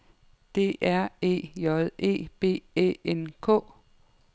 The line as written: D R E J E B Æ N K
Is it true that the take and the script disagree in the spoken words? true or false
false